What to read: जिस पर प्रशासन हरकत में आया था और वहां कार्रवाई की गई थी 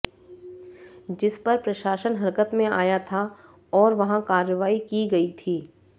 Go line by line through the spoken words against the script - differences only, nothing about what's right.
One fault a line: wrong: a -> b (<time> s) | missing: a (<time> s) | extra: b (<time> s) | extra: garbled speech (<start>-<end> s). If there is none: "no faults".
no faults